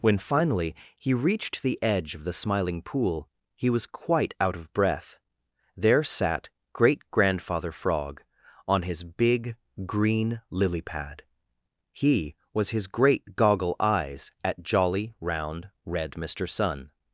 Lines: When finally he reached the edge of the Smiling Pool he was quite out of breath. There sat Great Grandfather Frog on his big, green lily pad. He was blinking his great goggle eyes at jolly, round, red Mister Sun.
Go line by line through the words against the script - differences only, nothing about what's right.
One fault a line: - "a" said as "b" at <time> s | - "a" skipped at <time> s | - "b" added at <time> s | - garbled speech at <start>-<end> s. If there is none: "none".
- "blinking" skipped at 12.7 s